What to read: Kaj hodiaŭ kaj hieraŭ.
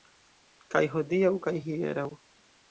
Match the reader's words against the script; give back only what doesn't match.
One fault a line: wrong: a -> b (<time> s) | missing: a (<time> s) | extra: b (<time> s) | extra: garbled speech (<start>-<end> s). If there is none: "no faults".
no faults